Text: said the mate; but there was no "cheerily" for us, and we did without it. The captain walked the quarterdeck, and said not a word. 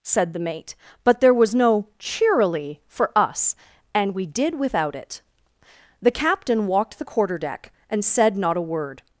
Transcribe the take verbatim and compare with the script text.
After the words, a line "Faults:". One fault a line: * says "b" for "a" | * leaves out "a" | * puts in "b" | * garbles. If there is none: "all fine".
said the mate; but there was no "cheerily" for us, and we did without it. The captain walked the quarterdeck, and said not a word.
Faults:
all fine